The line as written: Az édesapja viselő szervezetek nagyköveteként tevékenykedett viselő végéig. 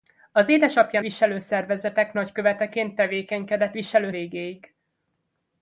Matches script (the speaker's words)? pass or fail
pass